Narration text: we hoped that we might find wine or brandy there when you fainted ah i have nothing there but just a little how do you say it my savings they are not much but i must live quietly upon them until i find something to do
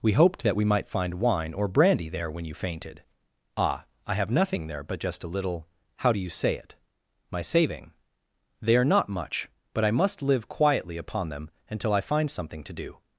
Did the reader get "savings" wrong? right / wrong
wrong